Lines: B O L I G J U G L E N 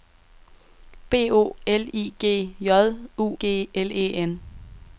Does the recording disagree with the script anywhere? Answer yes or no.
no